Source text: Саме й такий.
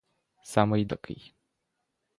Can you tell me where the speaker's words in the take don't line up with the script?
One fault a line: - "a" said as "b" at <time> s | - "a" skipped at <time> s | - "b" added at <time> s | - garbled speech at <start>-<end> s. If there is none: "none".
none